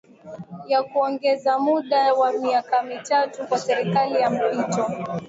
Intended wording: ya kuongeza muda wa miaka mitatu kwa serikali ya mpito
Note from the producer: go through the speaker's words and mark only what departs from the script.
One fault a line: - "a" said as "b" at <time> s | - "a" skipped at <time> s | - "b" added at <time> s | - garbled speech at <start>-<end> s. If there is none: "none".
none